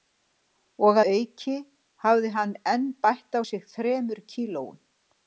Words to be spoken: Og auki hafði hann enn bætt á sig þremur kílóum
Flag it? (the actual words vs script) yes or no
no